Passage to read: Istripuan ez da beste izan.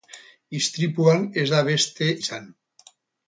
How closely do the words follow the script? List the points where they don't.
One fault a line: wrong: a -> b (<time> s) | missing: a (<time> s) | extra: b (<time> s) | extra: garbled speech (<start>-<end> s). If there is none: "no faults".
no faults